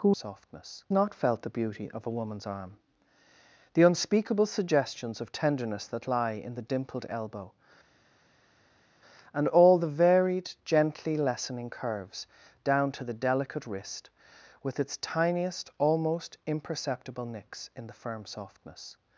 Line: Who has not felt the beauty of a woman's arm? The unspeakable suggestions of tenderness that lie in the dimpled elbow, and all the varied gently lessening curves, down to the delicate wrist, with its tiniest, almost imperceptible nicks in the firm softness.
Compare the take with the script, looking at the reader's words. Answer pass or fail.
fail